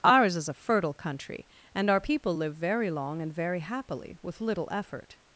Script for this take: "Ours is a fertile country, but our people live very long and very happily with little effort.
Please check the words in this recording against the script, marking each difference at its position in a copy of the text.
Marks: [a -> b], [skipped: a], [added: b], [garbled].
"Ours is a fertile country, [but -> and] our people live very long and very happily with little effort.